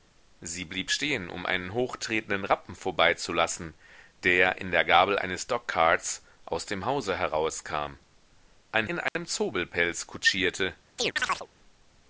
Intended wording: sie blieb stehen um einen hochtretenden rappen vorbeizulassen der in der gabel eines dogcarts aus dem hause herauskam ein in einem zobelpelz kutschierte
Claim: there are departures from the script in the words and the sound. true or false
true